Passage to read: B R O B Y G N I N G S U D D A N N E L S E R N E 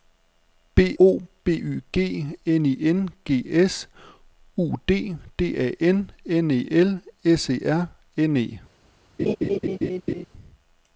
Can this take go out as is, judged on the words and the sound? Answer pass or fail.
fail